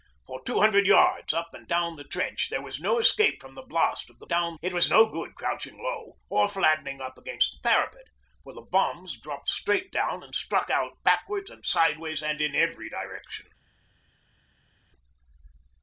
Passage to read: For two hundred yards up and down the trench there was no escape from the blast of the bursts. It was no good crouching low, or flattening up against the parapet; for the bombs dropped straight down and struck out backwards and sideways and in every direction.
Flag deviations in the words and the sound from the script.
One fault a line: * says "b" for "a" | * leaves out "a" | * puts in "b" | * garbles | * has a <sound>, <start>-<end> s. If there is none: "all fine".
* says "down" for "bursts"